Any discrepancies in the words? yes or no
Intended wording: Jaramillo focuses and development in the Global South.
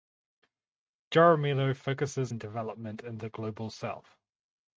no